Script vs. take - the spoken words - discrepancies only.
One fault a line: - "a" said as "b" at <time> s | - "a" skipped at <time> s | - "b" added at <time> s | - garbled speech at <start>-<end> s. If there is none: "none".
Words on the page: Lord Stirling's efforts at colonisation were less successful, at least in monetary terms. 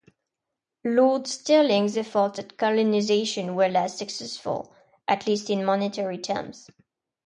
none